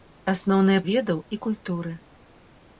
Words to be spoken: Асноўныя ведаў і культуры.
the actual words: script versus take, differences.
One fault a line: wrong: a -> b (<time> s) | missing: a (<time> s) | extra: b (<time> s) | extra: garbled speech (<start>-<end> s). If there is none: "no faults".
no faults